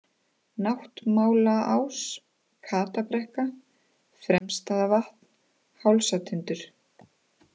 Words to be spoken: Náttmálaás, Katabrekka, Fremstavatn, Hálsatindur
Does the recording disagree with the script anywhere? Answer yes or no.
no